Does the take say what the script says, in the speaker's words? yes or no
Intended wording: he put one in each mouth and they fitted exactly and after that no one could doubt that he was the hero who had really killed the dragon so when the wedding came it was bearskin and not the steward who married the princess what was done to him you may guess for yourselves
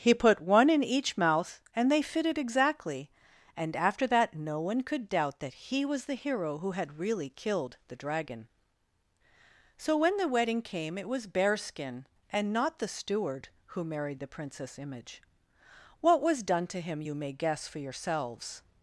no